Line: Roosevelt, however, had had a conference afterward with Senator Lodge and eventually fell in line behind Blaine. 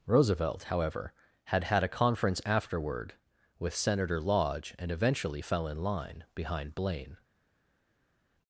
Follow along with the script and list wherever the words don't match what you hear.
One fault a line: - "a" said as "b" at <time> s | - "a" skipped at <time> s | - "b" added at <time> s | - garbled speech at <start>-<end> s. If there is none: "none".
none